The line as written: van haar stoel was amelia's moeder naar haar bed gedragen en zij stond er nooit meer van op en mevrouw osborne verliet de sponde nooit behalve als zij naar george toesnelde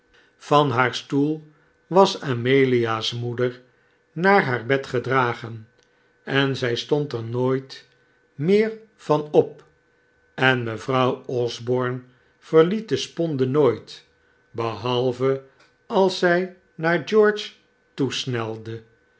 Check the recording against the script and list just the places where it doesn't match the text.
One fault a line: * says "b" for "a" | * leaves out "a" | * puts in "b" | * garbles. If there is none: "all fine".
all fine